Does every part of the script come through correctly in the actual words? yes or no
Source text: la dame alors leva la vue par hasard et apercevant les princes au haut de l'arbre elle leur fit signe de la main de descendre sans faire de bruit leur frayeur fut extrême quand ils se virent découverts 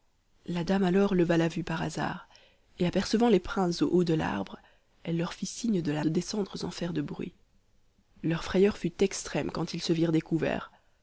no